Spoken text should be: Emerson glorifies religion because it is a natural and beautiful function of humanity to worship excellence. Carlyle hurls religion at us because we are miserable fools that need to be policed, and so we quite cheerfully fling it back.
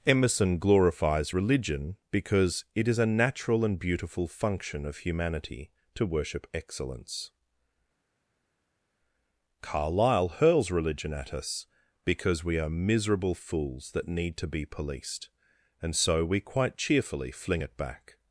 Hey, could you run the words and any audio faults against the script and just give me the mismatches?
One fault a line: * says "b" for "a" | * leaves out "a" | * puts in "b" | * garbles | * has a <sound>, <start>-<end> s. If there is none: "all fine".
all fine